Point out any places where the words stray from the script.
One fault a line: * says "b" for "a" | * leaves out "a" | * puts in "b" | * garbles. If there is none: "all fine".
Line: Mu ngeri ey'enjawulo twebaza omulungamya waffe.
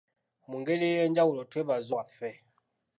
* leaves out "omulungamya"